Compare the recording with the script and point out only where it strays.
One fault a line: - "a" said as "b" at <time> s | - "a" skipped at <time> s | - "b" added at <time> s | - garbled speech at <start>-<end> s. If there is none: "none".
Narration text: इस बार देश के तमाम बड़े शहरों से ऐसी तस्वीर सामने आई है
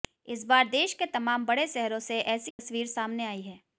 none